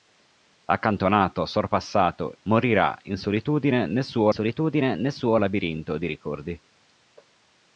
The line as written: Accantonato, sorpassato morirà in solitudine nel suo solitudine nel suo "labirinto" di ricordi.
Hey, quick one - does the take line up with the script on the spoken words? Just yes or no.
yes